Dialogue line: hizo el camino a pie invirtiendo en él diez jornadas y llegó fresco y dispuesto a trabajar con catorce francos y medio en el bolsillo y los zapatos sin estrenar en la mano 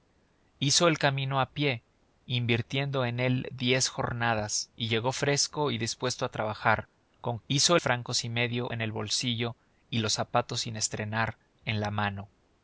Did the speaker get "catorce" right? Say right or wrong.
wrong